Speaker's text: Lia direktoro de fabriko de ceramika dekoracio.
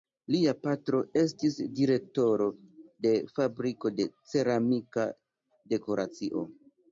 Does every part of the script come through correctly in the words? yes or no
no